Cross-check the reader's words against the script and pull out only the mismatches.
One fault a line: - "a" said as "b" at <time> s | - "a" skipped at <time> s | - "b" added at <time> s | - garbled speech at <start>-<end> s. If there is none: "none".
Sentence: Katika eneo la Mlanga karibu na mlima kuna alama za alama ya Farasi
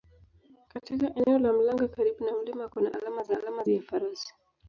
none